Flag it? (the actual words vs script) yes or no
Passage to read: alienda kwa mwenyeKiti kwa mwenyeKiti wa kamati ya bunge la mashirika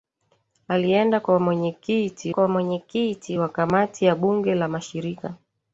no